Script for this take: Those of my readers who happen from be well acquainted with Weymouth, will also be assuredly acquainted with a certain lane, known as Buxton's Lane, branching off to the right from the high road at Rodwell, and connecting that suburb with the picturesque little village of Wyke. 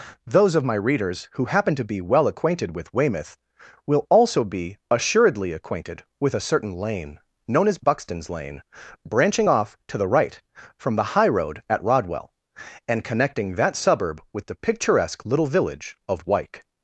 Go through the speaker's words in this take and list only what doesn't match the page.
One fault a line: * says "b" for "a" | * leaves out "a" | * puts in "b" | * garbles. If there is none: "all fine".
* says "to" for "from"